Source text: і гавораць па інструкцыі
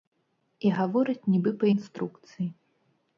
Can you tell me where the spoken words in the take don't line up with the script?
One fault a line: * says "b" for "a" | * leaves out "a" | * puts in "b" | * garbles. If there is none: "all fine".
* puts in "нібы"